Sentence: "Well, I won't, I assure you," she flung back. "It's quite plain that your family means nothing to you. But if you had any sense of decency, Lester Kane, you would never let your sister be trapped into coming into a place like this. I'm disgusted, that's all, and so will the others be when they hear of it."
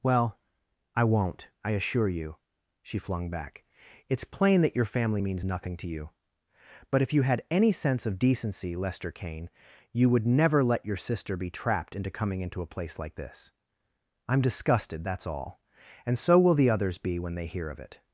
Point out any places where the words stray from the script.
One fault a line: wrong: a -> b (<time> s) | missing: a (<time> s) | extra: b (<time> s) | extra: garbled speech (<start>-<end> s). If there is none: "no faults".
missing: quite (4.2 s)